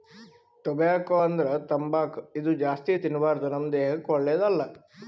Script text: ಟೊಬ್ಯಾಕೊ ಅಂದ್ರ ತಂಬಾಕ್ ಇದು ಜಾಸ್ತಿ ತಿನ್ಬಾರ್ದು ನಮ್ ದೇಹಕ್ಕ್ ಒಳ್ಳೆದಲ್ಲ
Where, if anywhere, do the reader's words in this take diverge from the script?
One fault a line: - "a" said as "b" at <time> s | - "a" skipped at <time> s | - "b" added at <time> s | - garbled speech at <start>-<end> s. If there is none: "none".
none